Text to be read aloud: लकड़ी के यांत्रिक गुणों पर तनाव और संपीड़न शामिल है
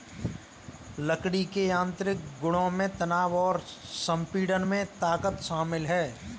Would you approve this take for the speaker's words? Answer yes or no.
no